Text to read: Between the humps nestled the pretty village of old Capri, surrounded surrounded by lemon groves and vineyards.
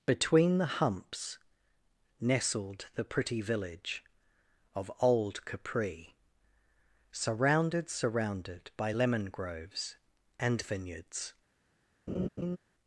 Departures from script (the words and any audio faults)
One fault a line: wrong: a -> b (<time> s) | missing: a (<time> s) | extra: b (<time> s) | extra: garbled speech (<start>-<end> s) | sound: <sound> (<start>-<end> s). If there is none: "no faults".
sound: laugh (12.1-12.6 s)